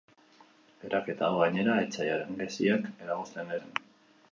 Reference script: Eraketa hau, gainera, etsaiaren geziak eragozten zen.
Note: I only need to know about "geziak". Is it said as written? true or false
true